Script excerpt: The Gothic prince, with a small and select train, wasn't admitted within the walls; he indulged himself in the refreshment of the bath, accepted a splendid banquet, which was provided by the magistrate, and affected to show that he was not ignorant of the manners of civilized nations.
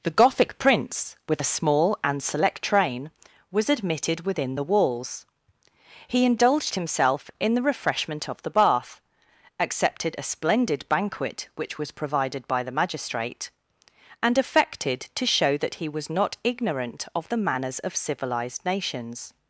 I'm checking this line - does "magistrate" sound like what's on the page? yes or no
yes